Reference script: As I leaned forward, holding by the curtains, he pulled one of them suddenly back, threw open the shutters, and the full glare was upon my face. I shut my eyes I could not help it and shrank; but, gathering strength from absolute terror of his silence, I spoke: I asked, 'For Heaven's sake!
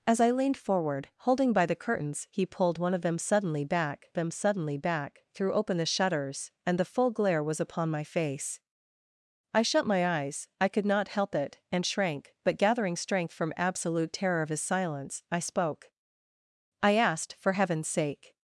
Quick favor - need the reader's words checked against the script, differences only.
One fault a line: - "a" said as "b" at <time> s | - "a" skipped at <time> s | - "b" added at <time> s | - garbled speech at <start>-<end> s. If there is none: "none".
- "them suddenly back" added at 4.2 s